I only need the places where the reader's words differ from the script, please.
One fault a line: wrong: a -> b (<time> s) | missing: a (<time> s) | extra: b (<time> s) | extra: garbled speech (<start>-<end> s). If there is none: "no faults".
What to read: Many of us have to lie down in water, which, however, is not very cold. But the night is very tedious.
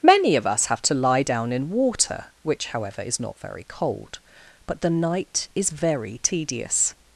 no faults